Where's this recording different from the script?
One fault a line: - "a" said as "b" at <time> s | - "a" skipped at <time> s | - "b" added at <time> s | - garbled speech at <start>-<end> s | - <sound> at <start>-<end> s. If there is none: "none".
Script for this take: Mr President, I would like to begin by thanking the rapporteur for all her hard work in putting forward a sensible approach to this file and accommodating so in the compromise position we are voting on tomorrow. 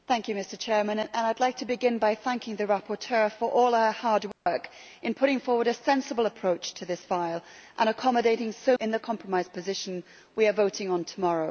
- dropout at 4.3-4.5 s